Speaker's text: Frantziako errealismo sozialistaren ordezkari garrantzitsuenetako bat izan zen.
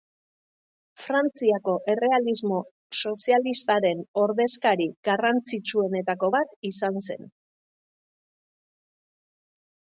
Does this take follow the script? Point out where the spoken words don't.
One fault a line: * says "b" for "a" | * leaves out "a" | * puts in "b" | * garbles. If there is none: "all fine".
all fine